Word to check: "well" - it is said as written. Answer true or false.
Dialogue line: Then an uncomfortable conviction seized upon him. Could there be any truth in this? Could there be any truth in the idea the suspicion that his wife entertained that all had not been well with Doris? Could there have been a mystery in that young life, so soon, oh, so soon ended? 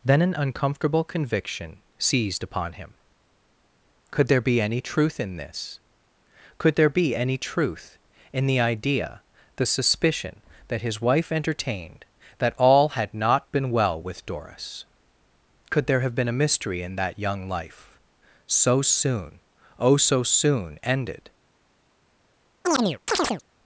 true